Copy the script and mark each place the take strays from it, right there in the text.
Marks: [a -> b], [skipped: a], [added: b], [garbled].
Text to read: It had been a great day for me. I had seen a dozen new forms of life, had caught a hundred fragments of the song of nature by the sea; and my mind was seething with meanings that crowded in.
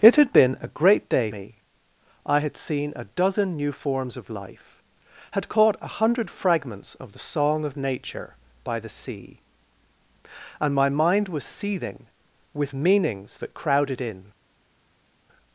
It had been a great day [skipped: for] me. I had seen a dozen new forms of life, had caught a hundred fragments of the song of nature by the sea; and my mind was seething with meanings that crowded in.